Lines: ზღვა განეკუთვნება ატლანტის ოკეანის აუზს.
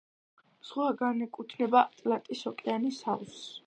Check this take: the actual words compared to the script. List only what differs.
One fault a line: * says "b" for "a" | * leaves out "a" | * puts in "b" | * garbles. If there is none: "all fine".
all fine